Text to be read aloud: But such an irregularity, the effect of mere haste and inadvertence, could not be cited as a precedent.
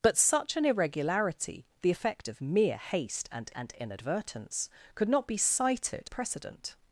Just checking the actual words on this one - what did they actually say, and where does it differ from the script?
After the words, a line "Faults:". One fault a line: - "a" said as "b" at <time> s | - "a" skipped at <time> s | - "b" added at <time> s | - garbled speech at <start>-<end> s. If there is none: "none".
But such an irregularity, the effect of mere haste and and inadvertence, could not be cited a precedent.
Faults:
- "and" added at 3.5 s
- "as" skipped at 6.1 s